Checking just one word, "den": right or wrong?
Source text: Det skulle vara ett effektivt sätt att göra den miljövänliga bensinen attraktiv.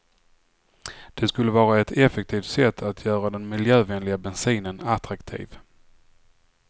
right